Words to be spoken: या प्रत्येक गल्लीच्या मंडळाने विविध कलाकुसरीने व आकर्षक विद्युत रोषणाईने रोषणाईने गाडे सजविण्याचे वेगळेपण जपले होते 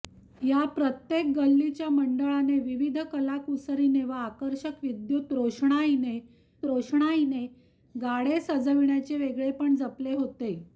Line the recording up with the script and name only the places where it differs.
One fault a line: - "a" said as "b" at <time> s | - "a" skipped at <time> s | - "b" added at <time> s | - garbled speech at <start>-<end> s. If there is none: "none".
none